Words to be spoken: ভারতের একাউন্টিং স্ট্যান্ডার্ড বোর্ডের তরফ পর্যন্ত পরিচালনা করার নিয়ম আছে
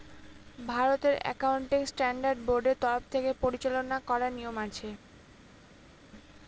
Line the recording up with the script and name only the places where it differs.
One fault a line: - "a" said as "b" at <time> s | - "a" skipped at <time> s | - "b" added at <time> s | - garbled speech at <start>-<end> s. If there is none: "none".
- "পর্যন্ত" said as "থেকে" at 3.1 s